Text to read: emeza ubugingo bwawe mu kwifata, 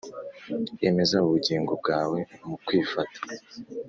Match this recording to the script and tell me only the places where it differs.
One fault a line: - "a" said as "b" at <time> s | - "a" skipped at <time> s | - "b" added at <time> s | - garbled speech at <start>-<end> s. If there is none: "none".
none